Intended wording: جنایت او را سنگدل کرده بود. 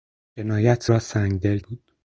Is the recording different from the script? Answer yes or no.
yes